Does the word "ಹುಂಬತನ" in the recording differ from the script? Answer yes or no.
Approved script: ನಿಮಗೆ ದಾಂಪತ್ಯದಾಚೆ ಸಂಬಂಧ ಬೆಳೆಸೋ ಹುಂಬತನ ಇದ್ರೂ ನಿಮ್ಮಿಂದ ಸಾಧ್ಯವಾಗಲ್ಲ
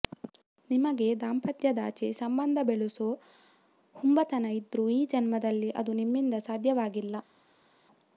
no